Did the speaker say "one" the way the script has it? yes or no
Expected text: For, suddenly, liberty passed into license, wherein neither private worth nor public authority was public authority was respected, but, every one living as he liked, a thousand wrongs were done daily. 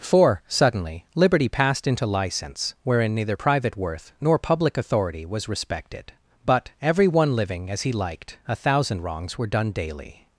yes